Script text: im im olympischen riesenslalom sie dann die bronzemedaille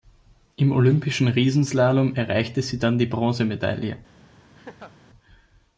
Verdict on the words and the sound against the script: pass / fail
fail